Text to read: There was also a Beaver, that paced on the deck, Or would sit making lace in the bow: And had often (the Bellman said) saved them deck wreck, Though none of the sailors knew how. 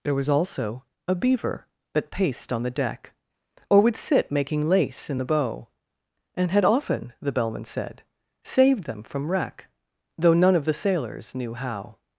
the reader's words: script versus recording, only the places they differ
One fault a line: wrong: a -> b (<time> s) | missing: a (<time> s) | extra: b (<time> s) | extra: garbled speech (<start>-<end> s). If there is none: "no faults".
wrong: deck -> from (9.0 s)